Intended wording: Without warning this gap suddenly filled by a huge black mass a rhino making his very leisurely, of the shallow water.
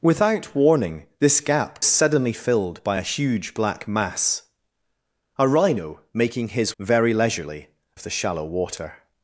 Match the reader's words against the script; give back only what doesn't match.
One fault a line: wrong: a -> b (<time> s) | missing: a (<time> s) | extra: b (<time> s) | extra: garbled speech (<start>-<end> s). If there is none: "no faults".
no faults